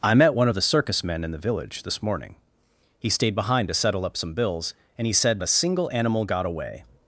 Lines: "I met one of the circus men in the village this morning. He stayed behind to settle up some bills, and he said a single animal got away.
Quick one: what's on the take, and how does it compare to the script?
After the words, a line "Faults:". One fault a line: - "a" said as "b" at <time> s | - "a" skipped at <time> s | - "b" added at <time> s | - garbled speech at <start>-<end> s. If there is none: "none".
"I met one of the circus men in the village this morning. He stayed behind to settle up some bills, and he said a single animal got away.
Faults:
none